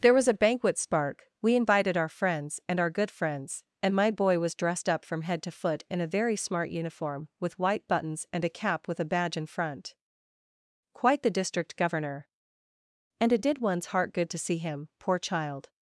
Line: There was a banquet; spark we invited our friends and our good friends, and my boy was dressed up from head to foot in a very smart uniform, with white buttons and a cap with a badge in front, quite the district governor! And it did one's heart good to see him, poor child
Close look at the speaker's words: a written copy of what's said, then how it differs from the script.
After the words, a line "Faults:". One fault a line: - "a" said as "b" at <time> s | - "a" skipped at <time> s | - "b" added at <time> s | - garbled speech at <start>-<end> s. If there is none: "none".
There was a banquet; spark we invited our friends and our good friends, and my boy was dressed up from head to foot in a very smart uniform, with white buttons and a cap with a badge in front, quite the district governor! And it did one's heart good to see him, poor child
Faults:
none